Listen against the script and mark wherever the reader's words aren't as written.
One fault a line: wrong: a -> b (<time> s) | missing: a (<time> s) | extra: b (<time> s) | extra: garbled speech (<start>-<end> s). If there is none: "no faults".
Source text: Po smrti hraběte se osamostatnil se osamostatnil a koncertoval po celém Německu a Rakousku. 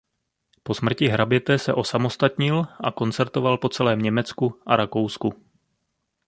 missing: se osamostatnil (2.7 s)